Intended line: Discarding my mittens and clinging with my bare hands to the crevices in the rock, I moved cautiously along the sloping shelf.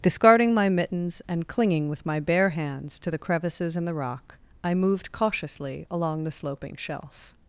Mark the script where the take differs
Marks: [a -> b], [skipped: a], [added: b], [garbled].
Discarding my mittens and clinging with my bare hands to the crevices in the rock, I moved cautiously along the sloping shelf.